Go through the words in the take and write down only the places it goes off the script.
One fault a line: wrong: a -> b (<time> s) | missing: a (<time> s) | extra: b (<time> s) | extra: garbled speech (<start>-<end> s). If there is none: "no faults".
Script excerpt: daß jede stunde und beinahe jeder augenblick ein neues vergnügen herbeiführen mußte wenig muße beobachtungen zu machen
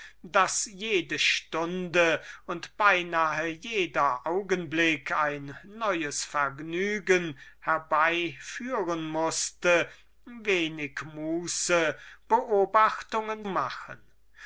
missing: zu (13.4 s)